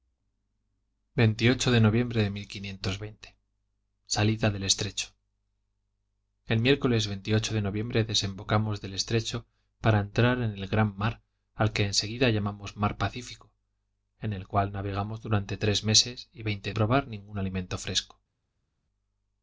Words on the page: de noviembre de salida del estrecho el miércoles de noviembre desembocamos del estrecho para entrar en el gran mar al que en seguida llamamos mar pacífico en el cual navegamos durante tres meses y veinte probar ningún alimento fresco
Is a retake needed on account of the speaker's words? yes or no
no